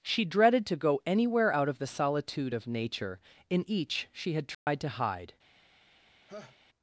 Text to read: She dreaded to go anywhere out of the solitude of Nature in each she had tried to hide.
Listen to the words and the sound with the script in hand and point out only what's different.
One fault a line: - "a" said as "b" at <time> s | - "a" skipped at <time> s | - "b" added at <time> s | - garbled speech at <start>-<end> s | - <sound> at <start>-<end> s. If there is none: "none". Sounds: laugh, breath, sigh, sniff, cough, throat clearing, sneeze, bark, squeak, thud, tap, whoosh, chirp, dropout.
- dropout at 4.5-4.7 s
- laugh at 6.3-6.6 s